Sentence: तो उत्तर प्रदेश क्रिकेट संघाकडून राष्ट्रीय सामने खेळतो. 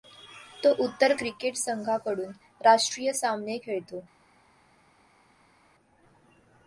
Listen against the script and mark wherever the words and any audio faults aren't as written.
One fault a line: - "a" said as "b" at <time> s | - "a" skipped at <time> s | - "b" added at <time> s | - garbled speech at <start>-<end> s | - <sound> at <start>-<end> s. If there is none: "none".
- "प्रदेश" skipped at 1.1 s